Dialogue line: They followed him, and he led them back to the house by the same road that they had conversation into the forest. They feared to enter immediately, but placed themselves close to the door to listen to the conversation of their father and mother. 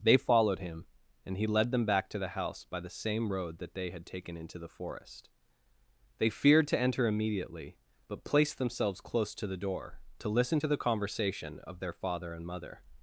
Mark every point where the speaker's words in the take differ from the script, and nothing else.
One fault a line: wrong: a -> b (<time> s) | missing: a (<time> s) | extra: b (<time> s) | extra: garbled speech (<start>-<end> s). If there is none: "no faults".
wrong: conversation -> taken (4.0 s)